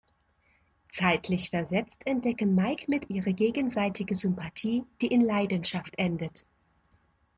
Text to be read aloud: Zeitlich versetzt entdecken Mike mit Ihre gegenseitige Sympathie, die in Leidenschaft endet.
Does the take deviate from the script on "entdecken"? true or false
false